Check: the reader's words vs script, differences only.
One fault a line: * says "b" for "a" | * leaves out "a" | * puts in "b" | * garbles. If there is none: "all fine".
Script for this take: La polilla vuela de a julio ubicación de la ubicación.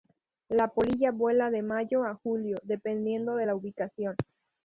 * puts in "mayo"
* says "dependiendo" for "ubicación"